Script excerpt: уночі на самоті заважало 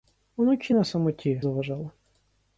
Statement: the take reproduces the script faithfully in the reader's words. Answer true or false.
true